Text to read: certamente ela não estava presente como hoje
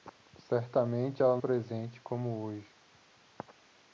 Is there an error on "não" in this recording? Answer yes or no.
yes